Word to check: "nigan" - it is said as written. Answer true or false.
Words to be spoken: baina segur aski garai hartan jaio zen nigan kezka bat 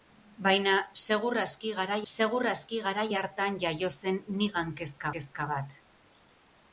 true